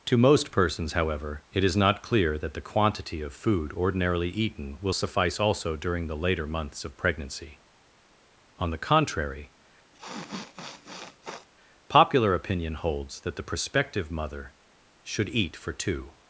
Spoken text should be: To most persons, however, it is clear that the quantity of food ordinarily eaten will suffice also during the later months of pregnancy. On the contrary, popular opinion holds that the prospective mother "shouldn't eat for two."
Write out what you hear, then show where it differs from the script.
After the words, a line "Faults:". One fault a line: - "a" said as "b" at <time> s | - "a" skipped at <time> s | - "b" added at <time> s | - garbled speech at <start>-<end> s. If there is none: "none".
To most persons, however, it is not clear that the quantity of food ordinarily eaten will suffice also during the later months of pregnancy. On the contrary, popular opinion holds that the prospective mother "should eat for two."
Faults:
- "not" added at 1.8 s
- "shouldn't" said as "should" at 15.0 s